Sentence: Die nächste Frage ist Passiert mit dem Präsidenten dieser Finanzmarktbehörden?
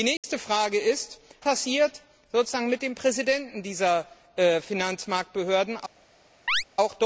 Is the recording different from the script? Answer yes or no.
no